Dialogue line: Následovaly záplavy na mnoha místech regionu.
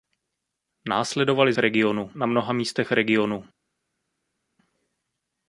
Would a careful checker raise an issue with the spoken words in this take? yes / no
yes